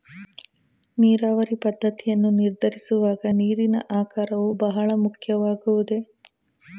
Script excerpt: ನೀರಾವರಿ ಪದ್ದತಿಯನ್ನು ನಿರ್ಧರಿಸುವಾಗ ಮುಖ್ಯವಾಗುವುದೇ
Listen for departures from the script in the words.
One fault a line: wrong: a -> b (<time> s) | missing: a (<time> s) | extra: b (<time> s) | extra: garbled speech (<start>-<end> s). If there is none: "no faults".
extra: ನೀರಿನ ಆಕಾರವು ಬಹಳ (3.3 s)